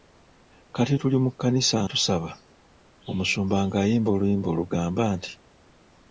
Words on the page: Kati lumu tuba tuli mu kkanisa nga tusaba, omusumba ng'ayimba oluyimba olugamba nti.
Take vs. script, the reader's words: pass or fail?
fail